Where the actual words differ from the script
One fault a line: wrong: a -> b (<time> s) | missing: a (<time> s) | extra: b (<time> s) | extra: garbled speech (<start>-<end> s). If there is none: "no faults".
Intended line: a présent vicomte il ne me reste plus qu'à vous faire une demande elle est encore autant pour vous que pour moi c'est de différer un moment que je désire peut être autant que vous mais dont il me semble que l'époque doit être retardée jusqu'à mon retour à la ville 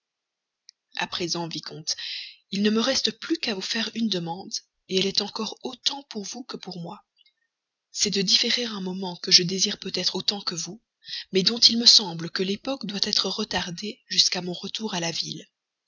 no faults